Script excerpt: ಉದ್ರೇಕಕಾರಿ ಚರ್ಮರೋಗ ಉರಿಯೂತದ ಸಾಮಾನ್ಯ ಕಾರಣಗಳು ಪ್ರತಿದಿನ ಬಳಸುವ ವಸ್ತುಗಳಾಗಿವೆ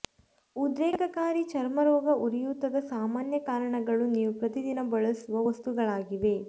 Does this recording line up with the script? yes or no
no